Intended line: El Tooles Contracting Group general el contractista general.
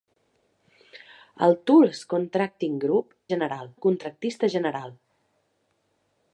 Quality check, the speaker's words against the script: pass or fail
pass